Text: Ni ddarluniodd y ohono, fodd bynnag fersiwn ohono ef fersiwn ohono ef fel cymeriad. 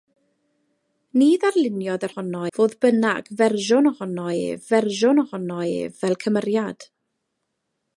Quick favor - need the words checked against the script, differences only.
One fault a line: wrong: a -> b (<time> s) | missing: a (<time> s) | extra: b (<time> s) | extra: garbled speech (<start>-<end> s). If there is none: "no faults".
no faults